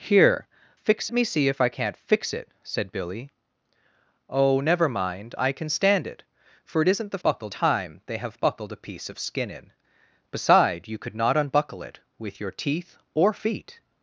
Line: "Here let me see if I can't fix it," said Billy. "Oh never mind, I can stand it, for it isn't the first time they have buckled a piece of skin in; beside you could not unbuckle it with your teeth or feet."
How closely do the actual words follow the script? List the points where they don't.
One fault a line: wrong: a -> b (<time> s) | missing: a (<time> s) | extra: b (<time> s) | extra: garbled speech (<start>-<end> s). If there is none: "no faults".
wrong: let -> fix (0.7 s)
wrong: first -> buckled (7.2 s)